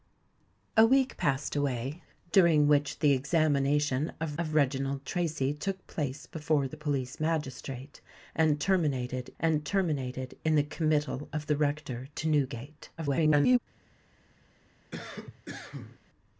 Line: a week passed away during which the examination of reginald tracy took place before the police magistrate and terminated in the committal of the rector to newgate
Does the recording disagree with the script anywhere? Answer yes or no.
yes